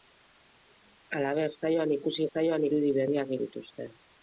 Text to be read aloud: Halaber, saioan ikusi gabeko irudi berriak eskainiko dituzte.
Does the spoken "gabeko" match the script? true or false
false